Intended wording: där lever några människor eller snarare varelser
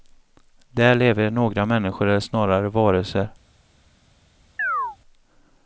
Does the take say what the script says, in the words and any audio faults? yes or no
no